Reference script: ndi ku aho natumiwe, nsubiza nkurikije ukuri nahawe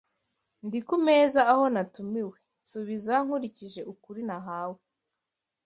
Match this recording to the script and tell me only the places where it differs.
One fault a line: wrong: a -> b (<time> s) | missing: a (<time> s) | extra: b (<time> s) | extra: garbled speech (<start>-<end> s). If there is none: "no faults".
extra: meza (1.1 s)